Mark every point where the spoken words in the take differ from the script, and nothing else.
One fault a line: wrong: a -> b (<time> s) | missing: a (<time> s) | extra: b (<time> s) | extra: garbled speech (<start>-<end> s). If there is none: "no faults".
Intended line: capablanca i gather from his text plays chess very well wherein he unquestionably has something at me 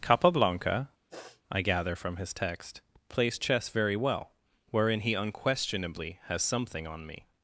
wrong: at -> on (6.9 s)